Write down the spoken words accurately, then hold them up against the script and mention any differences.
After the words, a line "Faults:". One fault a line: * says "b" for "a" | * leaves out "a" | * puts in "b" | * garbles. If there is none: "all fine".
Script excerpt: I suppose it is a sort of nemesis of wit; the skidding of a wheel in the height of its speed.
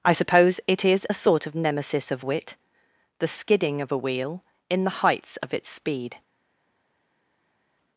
I suppose it is a sort of nemesis of wit; the skidding of a wheel in the heights of its speed.
Faults:
* says "heights" for "height"